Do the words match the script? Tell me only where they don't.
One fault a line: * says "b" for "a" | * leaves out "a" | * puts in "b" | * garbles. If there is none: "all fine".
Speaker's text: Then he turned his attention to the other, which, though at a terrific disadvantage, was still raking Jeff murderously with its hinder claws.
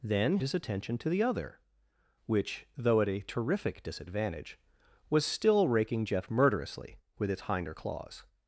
* leaves out "he turned"